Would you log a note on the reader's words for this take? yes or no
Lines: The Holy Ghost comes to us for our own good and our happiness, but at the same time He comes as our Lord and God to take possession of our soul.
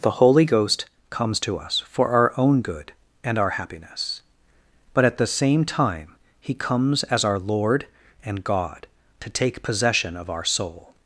no